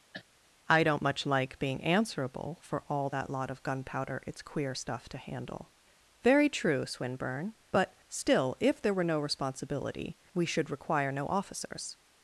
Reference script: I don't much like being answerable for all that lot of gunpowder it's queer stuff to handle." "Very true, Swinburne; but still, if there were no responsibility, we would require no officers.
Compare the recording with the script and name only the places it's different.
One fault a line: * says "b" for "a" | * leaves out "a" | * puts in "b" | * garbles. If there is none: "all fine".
* says "should" for "would"